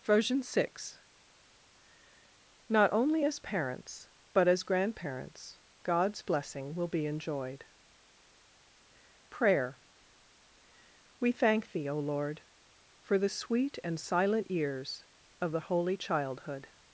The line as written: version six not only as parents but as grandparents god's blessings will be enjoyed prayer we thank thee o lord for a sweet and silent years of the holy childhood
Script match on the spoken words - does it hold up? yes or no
no